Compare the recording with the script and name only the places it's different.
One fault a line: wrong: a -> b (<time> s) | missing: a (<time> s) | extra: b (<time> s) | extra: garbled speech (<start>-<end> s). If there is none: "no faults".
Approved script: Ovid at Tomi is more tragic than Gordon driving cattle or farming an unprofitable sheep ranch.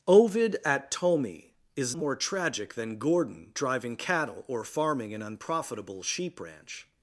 no faults